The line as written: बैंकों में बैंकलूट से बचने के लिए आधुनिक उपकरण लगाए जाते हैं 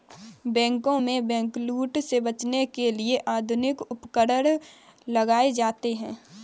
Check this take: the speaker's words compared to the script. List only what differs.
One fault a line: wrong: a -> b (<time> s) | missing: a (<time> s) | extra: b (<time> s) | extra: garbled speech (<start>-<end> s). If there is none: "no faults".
no faults